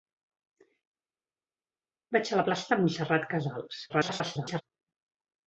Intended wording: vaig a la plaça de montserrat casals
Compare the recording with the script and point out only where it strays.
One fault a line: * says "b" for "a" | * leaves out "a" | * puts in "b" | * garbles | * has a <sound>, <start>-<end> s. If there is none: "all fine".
* garbles